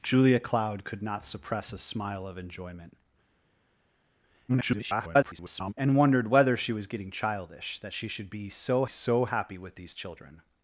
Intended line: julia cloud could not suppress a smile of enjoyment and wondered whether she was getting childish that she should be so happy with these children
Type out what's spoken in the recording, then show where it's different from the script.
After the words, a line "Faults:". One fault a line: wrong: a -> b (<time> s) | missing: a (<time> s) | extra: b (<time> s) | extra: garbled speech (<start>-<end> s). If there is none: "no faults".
julia cloud could not suppress a smile of enjoyment [garbled] and wondered whether she was getting childish that she should be so so happy with these children
Faults:
extra: garbled speech (4.5-5.7 s)
extra: so (8.9 s)